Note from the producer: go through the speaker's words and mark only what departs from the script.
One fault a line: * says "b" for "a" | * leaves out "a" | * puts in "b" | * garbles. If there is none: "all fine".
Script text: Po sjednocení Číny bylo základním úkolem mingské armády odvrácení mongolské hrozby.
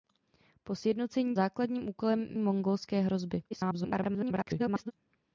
* leaves out "Číny bylo"
* leaves out "mingské armády odvrácení"
* garbles